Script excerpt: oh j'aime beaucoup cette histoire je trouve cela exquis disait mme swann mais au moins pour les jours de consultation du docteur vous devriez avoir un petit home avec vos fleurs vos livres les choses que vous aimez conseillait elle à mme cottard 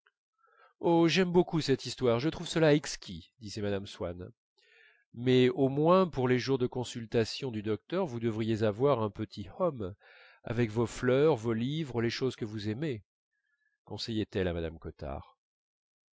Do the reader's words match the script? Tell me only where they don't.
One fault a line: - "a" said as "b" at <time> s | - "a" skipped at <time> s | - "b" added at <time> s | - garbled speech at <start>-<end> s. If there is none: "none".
none